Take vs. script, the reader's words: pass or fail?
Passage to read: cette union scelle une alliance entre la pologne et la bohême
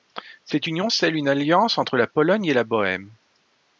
pass